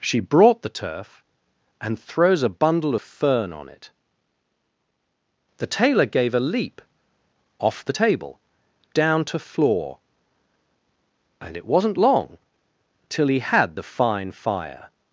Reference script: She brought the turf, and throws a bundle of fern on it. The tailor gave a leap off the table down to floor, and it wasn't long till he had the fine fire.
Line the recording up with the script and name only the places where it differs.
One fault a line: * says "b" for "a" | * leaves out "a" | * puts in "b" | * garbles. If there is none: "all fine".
all fine